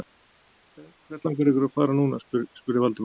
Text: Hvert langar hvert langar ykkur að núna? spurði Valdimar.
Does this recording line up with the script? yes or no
no